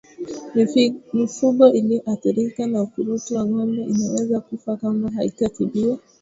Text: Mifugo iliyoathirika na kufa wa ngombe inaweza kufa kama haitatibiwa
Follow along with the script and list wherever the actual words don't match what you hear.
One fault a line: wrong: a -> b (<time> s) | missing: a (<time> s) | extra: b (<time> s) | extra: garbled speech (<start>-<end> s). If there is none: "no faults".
wrong: kufa -> ukurutu (2.8 s)